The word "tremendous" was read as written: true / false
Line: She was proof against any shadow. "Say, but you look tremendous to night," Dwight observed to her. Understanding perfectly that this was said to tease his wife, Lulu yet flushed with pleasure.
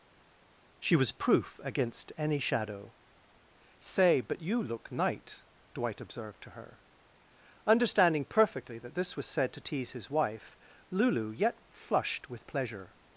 false